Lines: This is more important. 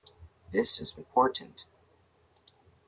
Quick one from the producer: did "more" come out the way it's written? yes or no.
no